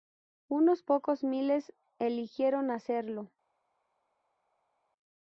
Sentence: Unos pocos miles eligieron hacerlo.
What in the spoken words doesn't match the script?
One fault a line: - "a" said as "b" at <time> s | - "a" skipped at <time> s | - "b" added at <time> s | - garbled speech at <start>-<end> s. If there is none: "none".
none